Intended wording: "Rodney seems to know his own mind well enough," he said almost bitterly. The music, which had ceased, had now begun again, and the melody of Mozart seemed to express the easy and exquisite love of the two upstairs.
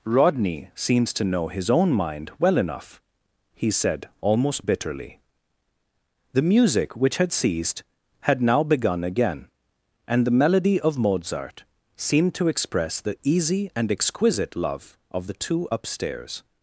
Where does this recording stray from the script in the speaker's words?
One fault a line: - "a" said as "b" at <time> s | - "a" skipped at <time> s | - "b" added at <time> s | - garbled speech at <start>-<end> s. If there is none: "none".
none